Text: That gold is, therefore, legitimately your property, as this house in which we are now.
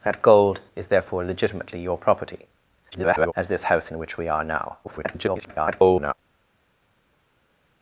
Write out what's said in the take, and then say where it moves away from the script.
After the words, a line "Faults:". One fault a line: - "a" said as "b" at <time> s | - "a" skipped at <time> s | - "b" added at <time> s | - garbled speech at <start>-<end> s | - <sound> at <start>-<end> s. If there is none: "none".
That gold is, therefore, legitimately your property, [garbled] as this house in which we are now. [garbled]
Faults:
- garbled speech at 2.9-3.3 s
- garbled speech at 4.8-6.1 s